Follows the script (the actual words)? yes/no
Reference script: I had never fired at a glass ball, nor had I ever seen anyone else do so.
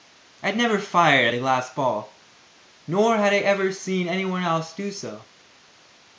yes